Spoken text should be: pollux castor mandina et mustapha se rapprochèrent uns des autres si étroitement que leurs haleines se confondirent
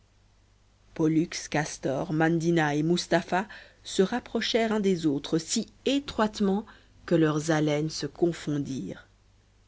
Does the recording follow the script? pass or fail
pass